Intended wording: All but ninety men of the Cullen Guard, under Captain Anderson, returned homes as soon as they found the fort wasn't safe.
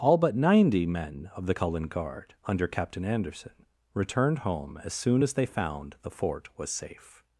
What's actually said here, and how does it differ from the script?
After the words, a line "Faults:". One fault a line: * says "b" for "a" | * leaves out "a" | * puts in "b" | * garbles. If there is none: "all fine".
All but ninety men of the Cullen Guard, under Captain Anderson, returned home as soon as they found the fort was safe.
Faults:
* says "home" for "homes"
* says "was" for "wasn't"